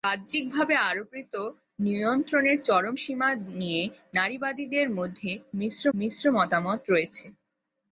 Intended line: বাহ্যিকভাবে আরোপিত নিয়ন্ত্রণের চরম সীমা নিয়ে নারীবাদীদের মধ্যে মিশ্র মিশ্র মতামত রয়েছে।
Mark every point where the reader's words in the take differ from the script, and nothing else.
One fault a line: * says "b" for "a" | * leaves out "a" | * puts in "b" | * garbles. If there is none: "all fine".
all fine